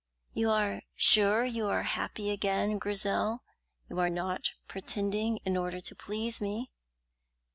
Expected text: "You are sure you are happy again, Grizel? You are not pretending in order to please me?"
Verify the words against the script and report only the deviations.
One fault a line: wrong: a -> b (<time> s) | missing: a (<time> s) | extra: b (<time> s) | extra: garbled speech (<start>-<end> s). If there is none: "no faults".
no faults